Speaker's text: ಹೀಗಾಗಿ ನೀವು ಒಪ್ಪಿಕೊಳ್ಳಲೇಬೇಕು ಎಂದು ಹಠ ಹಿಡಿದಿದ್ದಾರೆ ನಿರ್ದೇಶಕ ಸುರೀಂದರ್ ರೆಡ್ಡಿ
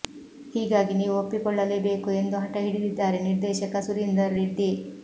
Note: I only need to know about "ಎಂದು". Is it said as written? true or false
true